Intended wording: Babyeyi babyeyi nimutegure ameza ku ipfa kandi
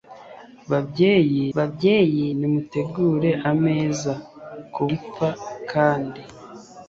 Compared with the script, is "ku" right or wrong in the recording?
right